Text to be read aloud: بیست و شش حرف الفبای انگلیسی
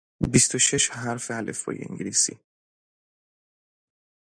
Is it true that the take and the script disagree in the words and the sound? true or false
false